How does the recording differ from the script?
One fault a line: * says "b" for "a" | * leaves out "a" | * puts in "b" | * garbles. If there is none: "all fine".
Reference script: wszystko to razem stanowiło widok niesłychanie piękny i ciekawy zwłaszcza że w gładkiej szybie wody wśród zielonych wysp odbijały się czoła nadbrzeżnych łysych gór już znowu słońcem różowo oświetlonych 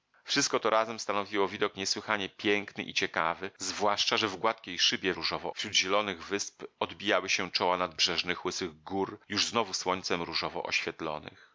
* says "różowo" for "wody"